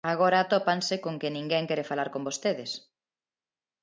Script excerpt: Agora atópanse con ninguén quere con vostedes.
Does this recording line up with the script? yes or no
no